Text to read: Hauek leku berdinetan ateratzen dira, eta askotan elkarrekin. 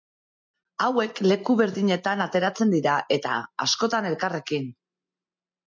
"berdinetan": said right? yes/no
yes